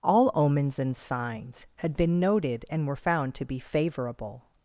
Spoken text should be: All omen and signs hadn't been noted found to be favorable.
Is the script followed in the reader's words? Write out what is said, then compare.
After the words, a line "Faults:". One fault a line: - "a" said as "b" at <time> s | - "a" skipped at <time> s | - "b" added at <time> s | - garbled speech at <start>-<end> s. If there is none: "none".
All omens and signs had been noted and were found to be favorable.
Faults:
- "omen" said as "omens" at 0.3 s
- "hadn't" said as "had" at 1.8 s
- "and were" added at 2.7 s